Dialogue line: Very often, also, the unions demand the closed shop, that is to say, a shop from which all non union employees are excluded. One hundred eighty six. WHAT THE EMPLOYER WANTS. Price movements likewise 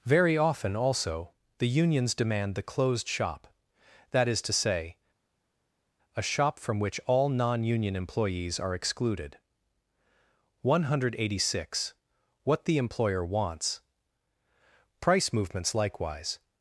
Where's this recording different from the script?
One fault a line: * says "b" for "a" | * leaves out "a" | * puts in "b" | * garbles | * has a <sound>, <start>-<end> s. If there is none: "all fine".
all fine